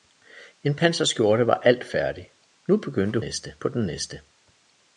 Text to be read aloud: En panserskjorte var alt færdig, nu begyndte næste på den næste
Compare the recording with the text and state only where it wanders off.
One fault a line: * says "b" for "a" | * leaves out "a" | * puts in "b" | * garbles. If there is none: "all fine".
all fine